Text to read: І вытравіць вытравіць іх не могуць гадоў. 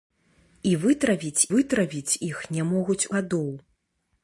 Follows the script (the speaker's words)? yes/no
yes